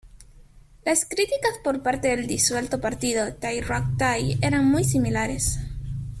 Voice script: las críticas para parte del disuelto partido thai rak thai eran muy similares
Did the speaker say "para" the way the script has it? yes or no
no